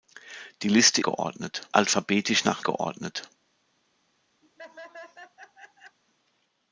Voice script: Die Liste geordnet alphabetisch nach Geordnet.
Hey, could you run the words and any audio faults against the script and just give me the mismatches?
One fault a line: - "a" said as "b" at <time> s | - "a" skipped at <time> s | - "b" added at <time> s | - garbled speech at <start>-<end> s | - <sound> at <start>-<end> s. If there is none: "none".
- laugh at 4.4-6.0 s